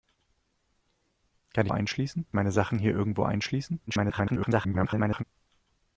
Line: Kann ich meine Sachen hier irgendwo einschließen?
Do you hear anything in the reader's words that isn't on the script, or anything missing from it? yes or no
yes